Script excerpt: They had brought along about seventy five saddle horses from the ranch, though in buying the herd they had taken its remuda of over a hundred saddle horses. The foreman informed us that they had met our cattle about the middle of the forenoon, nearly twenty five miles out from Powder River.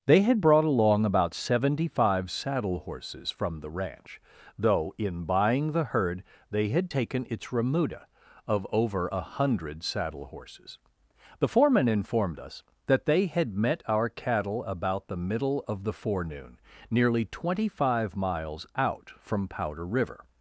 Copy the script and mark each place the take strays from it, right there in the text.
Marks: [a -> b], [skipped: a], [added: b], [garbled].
They had brought along about seventy five saddle horses from the ranch, though in buying the herd they had taken its remuda of over a hundred saddle horses. The foreman informed us that they had met our cattle about the middle of the forenoon, nearly twenty five miles out from Powder River.